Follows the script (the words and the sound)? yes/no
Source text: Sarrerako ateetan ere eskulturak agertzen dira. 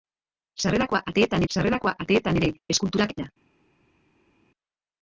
no